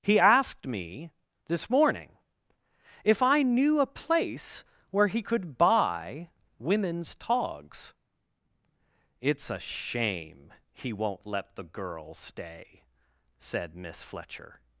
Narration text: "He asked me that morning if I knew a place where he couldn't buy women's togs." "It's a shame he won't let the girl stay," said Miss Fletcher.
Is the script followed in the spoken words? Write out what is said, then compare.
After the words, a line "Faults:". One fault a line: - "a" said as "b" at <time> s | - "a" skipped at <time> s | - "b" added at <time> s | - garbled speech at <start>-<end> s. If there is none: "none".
"He asked me this morning if I knew a place where he could buy women's togs." "It's a shame he won't let the girl stay," said Miss Fletcher.
Faults:
- "that" said as "this" at 1.4 s
- "couldn't" said as "could" at 5.2 s